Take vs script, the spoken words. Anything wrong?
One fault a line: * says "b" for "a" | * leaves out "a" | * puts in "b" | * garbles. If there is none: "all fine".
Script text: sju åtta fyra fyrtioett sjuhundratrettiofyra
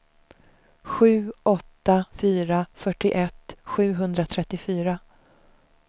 all fine